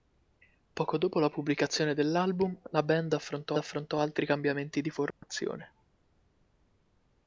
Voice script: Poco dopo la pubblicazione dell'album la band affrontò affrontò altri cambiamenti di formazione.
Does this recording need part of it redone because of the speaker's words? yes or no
no